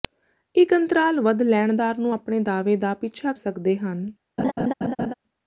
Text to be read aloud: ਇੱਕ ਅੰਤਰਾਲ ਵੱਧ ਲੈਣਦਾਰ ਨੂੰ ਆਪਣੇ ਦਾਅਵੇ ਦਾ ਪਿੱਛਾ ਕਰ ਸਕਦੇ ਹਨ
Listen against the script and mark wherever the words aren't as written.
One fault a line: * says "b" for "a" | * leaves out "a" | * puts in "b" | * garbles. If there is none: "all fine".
* leaves out "ਕਰ"